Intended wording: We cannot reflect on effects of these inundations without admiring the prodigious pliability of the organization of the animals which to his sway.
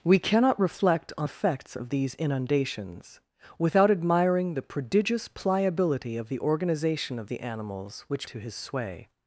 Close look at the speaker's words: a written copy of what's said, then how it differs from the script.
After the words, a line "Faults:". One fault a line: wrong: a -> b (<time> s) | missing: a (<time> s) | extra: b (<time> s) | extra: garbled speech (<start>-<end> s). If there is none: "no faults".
We cannot reflect on effects of these inundations without admiring the prodigious pliability of the organization of the animals which to his sway.
Faults:
no faults